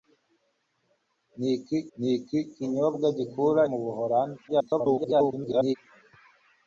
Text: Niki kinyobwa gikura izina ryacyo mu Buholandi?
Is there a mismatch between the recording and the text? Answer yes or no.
yes